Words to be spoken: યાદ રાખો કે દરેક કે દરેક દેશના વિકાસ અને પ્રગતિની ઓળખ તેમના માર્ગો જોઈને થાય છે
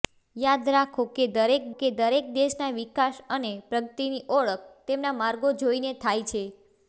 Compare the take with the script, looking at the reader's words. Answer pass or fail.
pass